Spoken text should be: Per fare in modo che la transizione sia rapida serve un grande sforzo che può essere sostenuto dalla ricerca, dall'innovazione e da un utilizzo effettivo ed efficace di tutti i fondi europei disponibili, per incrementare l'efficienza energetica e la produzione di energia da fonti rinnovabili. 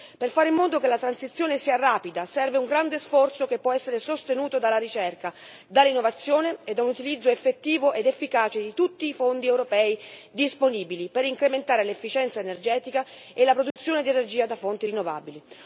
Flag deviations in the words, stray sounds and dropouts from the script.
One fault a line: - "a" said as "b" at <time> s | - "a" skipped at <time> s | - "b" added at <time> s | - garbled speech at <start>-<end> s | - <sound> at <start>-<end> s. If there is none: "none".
- dropout at 13.7-13.8 s